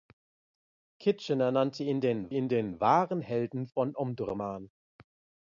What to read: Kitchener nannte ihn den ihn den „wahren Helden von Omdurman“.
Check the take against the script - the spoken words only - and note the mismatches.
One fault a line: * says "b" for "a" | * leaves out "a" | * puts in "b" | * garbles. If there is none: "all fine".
all fine